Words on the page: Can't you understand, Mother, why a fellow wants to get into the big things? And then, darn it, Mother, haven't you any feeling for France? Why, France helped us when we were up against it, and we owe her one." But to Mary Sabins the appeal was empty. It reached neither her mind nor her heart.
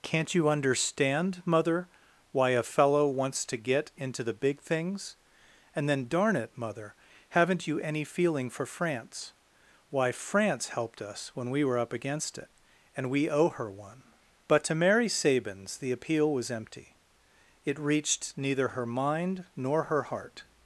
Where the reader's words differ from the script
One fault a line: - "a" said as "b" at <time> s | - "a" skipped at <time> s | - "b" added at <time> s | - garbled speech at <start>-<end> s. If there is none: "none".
none